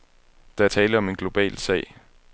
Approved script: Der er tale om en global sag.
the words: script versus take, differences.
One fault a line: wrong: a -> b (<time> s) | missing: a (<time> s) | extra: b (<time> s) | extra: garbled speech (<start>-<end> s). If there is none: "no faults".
no faults